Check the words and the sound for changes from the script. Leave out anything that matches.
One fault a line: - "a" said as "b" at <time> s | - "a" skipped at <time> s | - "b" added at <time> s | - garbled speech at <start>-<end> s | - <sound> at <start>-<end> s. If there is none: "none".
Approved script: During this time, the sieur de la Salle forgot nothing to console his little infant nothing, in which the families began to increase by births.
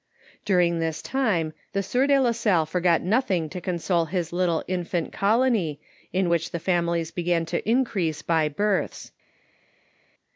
- "nothing" said as "colony" at 5.1 s